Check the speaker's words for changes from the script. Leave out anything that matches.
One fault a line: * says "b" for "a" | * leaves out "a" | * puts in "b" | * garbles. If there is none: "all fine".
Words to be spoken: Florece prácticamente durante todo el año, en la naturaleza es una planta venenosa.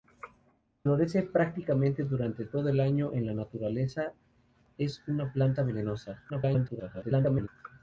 * garbles